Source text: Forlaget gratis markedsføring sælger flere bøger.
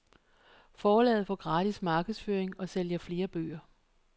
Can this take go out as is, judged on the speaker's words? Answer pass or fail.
fail